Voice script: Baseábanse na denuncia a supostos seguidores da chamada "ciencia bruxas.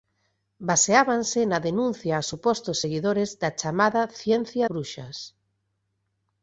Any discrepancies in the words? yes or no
no